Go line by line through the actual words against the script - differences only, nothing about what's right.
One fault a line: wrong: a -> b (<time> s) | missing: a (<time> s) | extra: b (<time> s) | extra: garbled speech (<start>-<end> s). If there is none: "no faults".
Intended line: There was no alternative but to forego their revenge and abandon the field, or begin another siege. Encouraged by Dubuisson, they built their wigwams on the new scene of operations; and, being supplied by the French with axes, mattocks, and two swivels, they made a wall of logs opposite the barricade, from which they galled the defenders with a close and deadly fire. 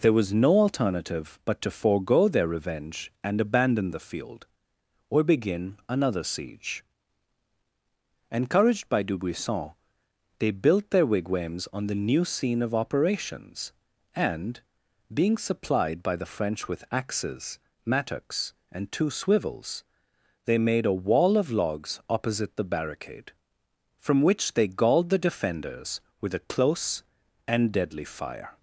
no faults